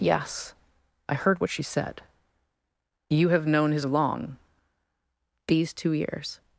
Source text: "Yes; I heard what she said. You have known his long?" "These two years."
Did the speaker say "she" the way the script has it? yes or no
yes